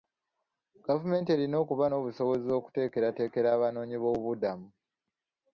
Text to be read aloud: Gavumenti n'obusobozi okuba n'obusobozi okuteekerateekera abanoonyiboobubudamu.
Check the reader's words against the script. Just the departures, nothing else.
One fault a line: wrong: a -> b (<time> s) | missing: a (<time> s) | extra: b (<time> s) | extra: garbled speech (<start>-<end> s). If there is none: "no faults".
wrong: n'obusobozi -> erina (1.4 s)